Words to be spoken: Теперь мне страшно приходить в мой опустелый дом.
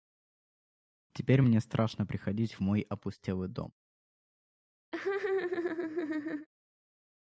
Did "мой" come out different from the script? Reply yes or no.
no